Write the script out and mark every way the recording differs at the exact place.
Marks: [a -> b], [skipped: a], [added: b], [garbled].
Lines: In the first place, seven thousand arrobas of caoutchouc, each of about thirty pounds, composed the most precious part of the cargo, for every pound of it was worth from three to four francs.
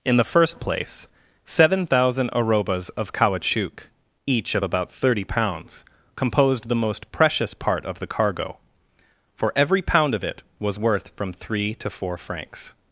In the first place, seven thousand arrobas of caoutchouc, each of about thirty pounds, composed the most precious part of the cargo, for every pound of it was worth from three to four francs.